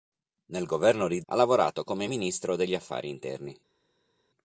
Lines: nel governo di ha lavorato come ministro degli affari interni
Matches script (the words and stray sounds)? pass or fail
pass